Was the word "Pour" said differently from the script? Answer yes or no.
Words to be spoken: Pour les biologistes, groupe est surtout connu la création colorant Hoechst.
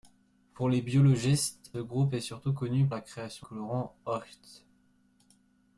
no